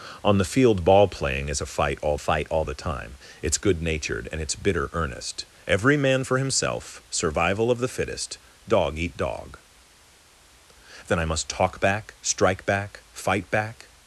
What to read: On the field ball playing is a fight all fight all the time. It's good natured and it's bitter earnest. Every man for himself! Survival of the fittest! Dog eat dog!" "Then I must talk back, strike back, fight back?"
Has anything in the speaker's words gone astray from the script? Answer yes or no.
no